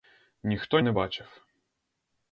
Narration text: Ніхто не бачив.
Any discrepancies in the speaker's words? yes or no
no